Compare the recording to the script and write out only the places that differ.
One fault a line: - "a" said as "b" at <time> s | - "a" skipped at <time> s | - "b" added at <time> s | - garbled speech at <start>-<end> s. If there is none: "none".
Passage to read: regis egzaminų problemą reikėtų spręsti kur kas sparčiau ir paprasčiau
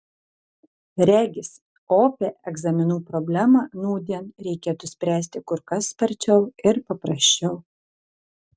- "opią" added at 2.0 s
- "nūdien" added at 3.8 s